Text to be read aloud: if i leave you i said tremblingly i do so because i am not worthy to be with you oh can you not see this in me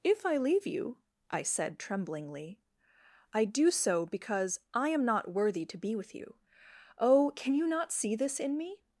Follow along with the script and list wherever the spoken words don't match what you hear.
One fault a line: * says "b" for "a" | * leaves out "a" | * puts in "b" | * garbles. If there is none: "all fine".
all fine